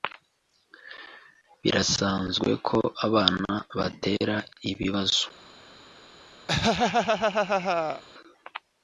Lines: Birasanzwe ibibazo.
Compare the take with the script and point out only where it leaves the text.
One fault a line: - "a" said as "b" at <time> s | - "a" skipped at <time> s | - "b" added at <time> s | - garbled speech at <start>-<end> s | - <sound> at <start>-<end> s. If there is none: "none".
- "ko abana batera" added at 2.7 s
- laugh at 6.5-8.0 s